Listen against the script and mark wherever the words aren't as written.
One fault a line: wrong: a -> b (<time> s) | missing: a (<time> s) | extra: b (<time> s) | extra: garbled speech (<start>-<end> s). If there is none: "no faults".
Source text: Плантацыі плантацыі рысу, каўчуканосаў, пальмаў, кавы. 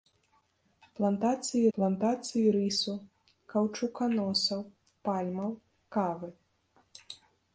no faults